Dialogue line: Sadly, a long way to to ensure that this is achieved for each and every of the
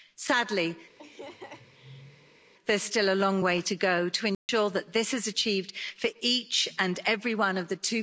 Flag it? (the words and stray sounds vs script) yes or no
yes